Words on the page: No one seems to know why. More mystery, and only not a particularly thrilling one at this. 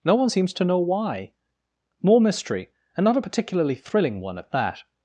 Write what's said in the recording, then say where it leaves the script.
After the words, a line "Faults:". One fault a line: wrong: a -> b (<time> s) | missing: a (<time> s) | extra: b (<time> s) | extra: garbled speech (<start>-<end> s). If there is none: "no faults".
No one seems to know why. More mystery, and not a particularly thrilling one at that.
Faults:
missing: only (3.0 s)
wrong: this -> that (4.5 s)